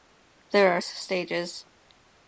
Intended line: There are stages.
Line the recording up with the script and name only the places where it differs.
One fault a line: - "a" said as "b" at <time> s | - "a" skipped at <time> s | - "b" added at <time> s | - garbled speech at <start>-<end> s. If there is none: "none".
none